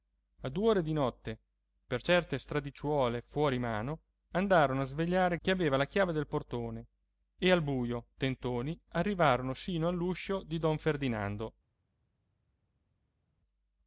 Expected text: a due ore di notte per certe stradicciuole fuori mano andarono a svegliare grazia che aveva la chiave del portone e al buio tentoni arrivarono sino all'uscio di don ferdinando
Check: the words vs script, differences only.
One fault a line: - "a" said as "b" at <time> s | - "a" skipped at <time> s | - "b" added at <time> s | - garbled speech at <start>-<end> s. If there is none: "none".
- "grazia" skipped at 5.4 s